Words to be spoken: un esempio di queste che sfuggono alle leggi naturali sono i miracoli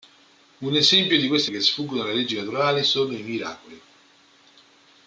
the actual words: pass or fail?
pass